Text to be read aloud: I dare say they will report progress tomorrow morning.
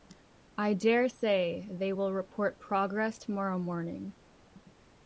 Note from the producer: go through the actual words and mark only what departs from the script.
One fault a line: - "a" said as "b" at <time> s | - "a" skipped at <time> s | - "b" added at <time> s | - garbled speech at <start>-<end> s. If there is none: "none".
none